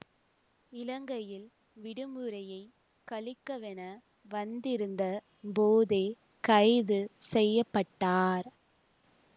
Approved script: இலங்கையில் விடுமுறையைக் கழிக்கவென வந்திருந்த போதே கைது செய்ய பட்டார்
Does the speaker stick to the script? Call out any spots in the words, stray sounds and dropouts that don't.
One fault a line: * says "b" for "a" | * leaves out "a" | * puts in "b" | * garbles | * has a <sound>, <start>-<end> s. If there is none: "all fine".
all fine